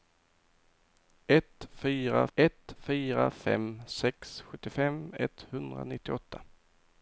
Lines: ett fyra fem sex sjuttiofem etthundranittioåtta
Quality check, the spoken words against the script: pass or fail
fail